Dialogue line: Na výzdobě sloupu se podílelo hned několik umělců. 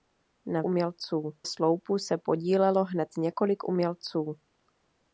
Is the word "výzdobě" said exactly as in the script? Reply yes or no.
no